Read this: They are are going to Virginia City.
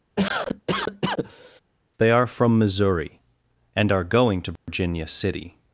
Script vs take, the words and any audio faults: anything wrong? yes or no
yes